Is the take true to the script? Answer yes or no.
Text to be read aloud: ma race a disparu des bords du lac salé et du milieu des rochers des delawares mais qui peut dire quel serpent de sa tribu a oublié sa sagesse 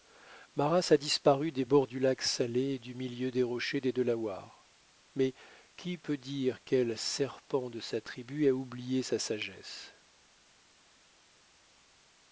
yes